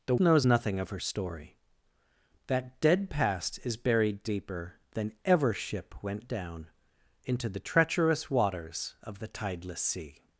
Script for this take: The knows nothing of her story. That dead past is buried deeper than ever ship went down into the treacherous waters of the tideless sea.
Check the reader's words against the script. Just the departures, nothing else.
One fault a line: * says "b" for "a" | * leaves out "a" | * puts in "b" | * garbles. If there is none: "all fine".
all fine